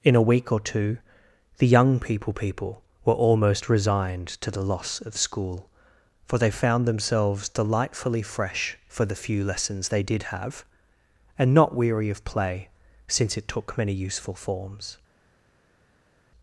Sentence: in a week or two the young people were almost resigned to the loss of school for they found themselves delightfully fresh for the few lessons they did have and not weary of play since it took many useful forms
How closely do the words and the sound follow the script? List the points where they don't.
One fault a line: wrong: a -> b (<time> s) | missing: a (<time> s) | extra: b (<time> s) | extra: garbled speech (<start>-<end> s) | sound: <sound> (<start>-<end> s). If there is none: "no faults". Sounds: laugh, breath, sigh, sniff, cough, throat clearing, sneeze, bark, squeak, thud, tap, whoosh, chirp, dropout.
extra: people (2.3 s)